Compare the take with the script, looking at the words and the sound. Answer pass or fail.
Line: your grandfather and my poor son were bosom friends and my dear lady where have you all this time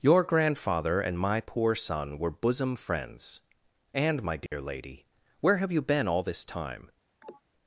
fail